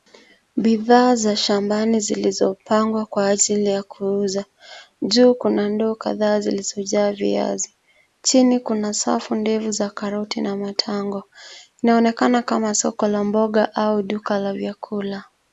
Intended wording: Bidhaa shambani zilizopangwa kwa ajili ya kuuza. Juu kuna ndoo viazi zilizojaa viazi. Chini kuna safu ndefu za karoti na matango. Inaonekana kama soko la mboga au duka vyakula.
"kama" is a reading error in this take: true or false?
false